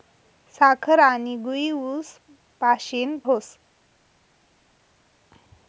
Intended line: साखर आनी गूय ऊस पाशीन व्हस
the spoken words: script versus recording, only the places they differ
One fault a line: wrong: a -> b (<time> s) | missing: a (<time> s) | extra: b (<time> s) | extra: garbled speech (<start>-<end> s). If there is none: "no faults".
no faults